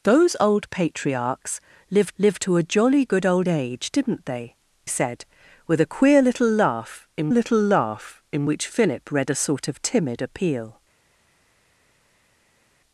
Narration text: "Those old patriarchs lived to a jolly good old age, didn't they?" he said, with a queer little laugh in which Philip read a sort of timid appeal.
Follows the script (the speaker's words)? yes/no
no